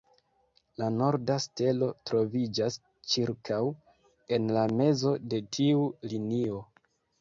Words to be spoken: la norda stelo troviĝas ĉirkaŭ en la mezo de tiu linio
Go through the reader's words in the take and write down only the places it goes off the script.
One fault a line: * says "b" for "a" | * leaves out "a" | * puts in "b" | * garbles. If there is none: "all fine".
all fine